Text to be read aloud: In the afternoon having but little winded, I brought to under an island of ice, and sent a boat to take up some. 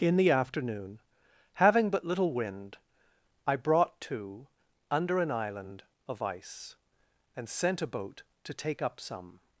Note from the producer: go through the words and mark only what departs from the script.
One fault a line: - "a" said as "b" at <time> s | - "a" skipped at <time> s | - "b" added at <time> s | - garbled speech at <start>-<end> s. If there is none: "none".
- "winded" said as "wind" at 2.3 s